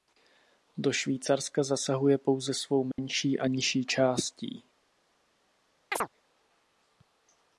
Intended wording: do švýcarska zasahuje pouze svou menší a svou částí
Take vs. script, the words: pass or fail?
fail